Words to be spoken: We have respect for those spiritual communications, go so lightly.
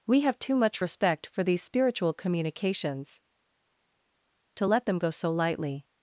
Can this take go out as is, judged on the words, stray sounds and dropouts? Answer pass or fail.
fail